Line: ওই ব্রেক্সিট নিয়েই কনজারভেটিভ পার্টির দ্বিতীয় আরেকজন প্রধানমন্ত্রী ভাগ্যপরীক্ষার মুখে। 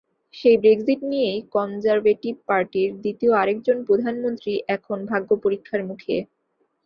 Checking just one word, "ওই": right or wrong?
wrong